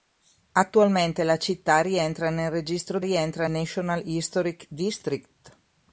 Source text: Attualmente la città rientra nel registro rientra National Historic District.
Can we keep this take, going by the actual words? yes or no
yes